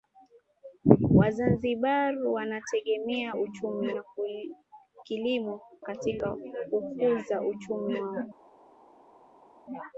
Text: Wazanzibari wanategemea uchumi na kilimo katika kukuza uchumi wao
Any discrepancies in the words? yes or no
no